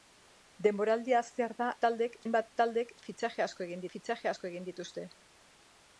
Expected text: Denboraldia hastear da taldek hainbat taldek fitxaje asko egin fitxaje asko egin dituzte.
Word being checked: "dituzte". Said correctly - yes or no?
yes